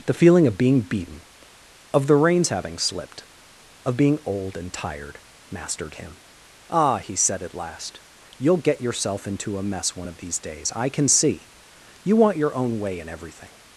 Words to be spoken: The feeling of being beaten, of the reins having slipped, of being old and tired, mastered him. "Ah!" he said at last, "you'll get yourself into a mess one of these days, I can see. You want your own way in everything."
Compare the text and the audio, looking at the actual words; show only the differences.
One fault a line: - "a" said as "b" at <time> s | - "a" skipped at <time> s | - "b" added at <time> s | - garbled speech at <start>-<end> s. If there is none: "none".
none